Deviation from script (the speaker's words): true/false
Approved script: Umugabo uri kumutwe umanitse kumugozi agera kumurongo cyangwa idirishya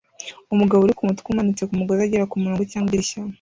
false